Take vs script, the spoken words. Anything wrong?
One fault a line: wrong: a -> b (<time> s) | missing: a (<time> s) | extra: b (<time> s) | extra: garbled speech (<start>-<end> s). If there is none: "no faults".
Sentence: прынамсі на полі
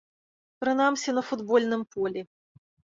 extra: футбольным (1.3 s)